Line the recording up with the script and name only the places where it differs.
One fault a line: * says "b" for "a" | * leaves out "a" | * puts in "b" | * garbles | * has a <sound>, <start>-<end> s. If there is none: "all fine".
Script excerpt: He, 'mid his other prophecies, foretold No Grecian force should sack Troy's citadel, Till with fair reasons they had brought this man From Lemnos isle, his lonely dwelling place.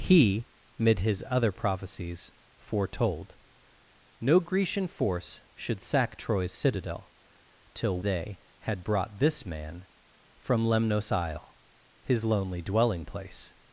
* leaves out "with fair reasons"